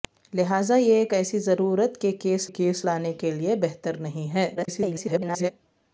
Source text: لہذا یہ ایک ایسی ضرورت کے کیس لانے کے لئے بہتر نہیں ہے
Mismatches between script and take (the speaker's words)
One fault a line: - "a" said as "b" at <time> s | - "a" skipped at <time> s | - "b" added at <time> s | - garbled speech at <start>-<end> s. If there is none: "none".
- "کیس" added at 2.4 s
- garbled speech at 4.5-5.5 s